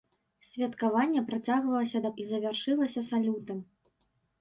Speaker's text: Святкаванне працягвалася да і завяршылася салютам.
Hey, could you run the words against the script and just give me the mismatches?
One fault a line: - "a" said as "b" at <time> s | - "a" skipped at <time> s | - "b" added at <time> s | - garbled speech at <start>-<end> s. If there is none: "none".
none